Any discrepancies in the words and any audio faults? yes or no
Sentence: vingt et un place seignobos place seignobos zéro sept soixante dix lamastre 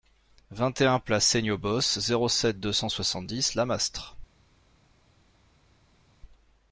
yes